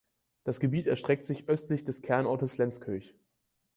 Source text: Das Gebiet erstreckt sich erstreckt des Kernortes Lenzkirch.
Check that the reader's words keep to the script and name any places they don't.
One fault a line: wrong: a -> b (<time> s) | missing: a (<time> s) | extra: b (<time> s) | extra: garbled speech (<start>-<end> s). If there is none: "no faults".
wrong: erstreckt -> östlich (1.5 s)